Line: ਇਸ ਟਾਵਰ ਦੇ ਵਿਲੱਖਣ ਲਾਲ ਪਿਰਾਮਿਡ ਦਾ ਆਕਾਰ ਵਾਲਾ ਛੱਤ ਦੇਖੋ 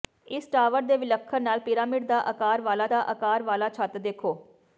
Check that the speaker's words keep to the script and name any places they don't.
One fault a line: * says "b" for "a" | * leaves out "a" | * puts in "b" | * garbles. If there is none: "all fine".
* puts in "ਦਾ ਆਕਾਰ ਵਾਲਾ"